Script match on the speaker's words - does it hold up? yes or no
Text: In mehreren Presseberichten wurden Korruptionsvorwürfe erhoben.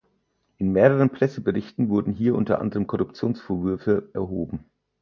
no